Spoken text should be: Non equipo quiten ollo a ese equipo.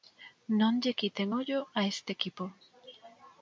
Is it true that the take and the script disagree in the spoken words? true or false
true